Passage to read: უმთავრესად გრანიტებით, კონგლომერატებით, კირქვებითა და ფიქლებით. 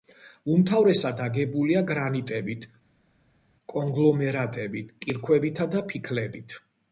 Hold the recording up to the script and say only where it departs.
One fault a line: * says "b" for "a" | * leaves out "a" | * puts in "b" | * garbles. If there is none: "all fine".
* puts in "აგებულია"